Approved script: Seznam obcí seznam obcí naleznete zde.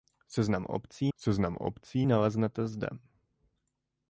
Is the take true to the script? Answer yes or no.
yes